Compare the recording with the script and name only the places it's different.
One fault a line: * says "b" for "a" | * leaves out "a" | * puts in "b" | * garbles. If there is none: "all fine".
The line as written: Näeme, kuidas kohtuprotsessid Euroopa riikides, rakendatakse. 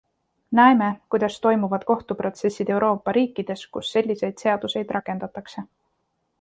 * puts in "toimuvad"
* puts in "kus selliseid seaduseid"